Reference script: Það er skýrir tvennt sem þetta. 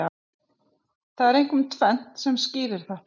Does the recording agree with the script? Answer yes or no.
no